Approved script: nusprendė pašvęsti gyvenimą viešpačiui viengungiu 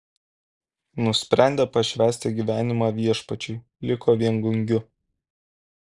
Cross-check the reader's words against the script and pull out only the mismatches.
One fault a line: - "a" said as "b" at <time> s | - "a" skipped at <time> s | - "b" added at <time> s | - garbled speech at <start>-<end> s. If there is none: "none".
- "liko" added at 3.9 s